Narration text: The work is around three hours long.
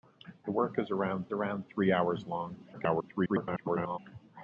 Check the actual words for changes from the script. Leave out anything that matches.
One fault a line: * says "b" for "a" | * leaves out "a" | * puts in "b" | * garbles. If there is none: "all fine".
* puts in "around"
* garbles